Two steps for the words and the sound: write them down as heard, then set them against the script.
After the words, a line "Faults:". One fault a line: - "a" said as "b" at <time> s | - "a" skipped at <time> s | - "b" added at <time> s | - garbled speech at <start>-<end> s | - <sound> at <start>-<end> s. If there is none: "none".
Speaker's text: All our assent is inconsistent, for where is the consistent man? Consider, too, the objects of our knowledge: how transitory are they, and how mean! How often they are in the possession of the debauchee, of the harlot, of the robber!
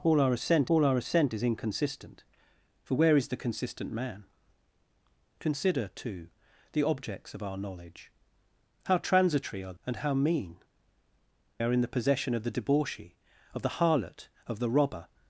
All our assent all our assent is inconsistent, for where is the consistent man? Consider, too, the objects of our knowledge: how transitory are and how mean! Are in the possession of the debauchee, of the harlot, of the robber!
Faults:
- "all our assent" added at 0.7 s
- "they" skipped at 9.7 s
- "How often they" skipped at 10.6 s